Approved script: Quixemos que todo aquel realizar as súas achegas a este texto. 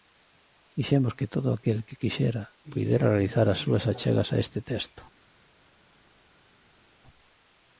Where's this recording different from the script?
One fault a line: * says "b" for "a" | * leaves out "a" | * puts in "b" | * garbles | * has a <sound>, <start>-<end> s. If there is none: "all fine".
* puts in "que quixera puidera"